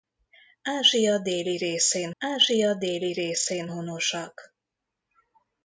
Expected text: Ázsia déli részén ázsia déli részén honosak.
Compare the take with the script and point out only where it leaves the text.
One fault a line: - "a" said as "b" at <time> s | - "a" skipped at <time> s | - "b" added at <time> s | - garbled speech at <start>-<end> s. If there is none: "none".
none